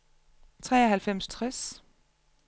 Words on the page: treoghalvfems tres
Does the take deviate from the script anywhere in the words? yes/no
no